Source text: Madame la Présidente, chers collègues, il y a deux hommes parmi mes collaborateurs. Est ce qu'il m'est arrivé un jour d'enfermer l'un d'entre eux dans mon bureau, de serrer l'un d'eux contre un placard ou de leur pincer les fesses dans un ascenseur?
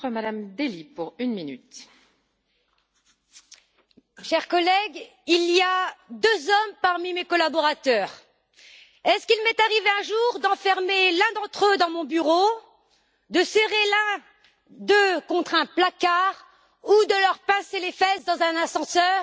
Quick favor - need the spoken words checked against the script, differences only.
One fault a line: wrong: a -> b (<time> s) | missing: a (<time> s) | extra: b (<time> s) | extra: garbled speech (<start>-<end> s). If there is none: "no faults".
no faults